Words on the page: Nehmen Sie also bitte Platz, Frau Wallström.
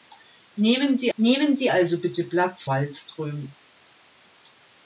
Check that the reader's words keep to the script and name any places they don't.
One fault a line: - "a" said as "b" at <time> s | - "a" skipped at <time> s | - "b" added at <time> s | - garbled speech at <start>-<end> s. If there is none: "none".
- "nehmen Sie" added at 1.2 s
- "Frau" skipped at 2.6 s